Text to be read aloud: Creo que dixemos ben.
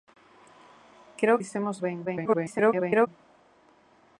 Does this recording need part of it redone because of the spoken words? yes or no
yes